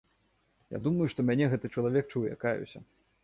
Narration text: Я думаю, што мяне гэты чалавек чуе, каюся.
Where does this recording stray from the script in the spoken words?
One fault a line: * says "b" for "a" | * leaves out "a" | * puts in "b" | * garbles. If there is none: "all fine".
all fine